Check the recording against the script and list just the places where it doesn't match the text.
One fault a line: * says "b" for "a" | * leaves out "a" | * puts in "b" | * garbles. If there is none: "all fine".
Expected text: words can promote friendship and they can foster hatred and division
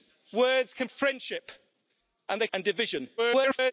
* leaves out "promote"
* leaves out "can foster hatred"
* garbles